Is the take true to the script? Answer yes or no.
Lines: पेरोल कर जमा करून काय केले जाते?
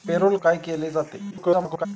no